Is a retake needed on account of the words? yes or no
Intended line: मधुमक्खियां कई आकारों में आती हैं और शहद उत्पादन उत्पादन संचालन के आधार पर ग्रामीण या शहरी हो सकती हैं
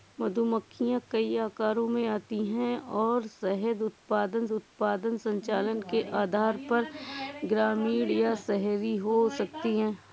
no